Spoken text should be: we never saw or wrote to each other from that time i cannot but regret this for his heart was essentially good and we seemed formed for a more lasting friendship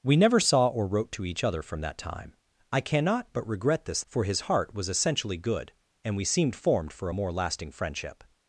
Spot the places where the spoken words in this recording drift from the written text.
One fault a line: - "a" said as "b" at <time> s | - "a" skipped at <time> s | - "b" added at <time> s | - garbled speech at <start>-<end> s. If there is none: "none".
none